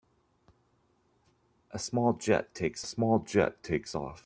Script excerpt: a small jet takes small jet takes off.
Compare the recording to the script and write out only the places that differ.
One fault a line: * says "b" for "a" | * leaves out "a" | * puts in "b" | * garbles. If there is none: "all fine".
all fine